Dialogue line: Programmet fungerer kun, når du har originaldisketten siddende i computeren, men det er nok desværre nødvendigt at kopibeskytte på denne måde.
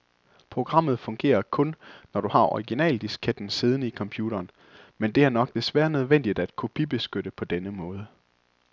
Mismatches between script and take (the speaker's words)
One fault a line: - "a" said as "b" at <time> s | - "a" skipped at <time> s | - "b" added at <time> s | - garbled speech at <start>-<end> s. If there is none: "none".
none